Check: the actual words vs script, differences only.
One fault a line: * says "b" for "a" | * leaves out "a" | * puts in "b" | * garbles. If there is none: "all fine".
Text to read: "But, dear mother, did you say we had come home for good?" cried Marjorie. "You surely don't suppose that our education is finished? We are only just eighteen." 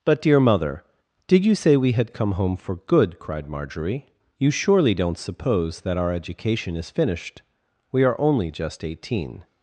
all fine